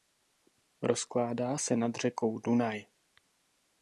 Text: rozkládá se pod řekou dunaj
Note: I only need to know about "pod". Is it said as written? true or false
false